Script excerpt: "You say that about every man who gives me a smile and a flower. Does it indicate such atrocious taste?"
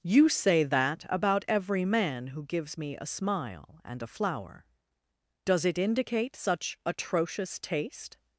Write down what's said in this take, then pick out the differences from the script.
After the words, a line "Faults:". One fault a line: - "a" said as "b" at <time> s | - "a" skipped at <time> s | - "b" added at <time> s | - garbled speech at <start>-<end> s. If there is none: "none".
"You say that about every man who gives me a smile and a flower. Does it indicate such atrocious taste?"
Faults:
none